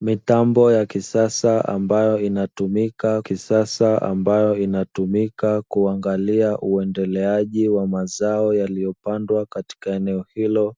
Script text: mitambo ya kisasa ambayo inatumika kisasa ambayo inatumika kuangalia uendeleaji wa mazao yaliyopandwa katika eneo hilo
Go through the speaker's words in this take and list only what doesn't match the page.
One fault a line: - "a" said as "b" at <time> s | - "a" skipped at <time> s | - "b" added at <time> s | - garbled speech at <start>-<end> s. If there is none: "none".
none